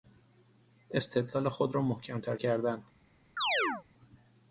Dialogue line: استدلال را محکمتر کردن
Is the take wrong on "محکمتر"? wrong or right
right